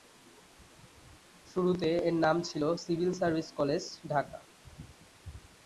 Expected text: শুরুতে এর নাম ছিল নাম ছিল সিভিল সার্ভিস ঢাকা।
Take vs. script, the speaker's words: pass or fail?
fail